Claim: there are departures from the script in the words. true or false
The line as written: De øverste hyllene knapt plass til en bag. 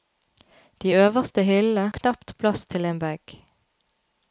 false